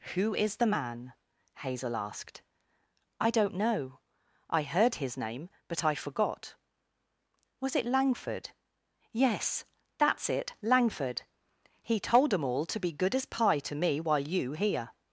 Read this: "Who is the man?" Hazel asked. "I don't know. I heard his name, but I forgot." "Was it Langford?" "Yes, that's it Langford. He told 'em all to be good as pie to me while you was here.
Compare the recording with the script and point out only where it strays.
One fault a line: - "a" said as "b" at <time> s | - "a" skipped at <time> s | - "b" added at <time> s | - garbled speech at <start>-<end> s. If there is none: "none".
- "was" skipped at 14.5 s